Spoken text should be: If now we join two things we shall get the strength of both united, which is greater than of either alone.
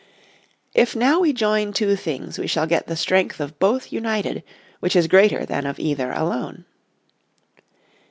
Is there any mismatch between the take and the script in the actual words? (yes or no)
no